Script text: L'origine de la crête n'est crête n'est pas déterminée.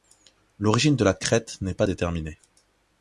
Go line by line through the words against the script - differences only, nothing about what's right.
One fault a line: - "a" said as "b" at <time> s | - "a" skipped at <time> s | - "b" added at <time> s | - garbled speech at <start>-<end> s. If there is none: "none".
- "crête n'est" skipped at 1.8 s